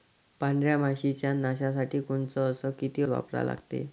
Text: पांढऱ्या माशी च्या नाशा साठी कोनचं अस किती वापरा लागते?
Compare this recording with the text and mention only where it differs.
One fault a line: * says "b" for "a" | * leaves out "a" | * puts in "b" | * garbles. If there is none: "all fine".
all fine